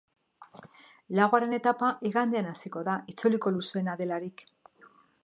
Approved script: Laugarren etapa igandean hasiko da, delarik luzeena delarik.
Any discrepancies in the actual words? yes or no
yes